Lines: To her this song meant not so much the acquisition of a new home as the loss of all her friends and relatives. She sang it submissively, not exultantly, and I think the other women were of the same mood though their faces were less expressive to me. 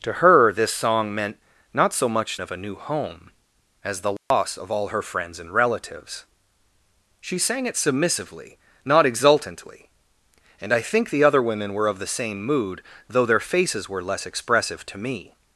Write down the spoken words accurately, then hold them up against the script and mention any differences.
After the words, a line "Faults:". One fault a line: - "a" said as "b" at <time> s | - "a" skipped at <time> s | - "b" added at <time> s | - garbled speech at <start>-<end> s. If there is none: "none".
To her this song meant not so much of a new home as the loss of all her friends and relatives. She sang it submissively, not exultantly, and I think the other women were of the same mood though their faces were less expressive to me.
Faults:
- "the acquisition" skipped at 2.4 s